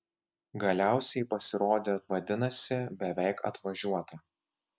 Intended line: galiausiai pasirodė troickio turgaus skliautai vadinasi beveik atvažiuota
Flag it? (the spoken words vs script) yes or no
yes